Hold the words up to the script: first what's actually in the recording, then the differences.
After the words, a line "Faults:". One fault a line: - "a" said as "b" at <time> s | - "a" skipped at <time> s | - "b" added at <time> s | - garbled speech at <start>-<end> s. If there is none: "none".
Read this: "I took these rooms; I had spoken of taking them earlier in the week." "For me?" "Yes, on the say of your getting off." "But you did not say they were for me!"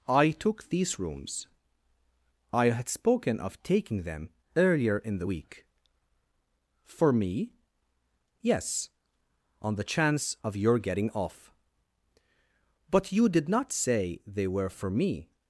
"I took these rooms; I had spoken of taking them earlier in the week." "For me?" "Yes, on the chance of your getting off." "But you did not say they were for me!"
Faults:
- "say" said as "chance" at 9.8 s